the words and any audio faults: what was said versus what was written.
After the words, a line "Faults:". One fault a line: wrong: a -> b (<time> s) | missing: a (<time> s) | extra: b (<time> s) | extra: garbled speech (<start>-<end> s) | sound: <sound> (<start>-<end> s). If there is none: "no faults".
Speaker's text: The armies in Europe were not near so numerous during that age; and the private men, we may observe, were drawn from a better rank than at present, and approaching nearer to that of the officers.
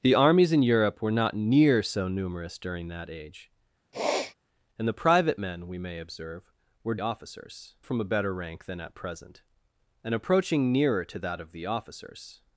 The armies in Europe were not near so numerous during that age; and the private men, we may observe, were officers from a better rank than at present, and approaching nearer to that of the officers.
Faults:
sound: sniff (3.9-4.3 s)
wrong: drawn -> officers (7.0 s)